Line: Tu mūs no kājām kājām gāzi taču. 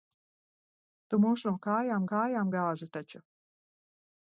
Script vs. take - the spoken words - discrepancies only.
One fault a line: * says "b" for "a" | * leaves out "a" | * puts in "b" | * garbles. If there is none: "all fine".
all fine